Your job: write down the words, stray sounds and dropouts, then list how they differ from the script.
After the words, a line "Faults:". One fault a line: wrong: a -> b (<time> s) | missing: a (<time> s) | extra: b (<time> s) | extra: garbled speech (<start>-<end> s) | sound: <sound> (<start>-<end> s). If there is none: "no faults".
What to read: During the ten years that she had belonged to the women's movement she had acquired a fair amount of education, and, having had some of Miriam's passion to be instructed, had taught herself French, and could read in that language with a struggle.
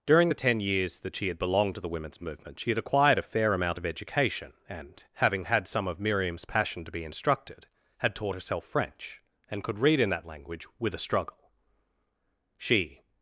During the ten years that she had belonged to the women's movement she had acquired a fair amount of education, and, having had some of Miriam's passion to be instructed, had taught herself French, and could read in that language with a struggle. She
Faults:
extra: She (12.6 s)